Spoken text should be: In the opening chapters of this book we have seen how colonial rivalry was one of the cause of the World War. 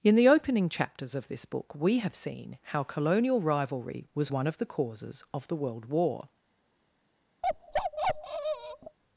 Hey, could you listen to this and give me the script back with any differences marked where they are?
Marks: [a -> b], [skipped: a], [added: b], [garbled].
In the opening chapters of this book we have seen how colonial rivalry was one of the [cause -> causes] of the World War.